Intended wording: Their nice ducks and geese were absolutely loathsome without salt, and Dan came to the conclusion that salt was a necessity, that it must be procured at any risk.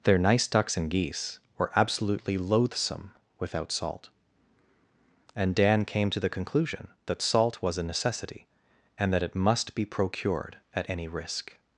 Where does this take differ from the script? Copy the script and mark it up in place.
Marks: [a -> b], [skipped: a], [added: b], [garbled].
Their nice ducks and geese were absolutely loathsome without salt, and Dan came to the conclusion that salt was a necessity, [added: and] that it must be procured at any risk.